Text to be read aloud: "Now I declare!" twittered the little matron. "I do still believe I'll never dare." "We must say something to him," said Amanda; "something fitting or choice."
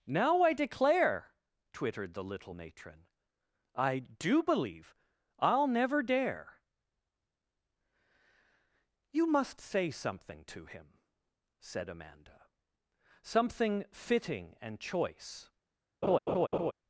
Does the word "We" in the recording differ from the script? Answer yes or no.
yes